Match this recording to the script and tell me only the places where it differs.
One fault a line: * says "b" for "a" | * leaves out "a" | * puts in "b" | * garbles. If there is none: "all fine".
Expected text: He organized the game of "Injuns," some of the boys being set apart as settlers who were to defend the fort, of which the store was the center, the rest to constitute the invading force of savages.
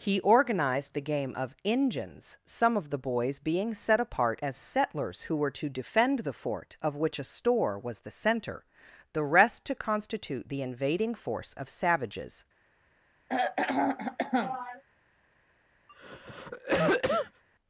* says "a" for "the"